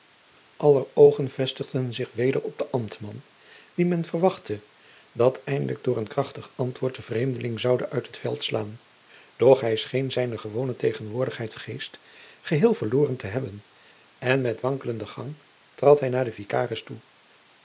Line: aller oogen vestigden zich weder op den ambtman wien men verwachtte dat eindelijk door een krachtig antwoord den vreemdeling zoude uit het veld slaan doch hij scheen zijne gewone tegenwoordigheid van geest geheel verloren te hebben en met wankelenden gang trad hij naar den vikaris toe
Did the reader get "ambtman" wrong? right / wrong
right